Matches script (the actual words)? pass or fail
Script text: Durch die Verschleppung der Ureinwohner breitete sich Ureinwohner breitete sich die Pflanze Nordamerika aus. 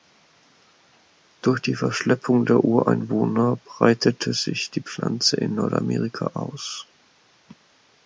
fail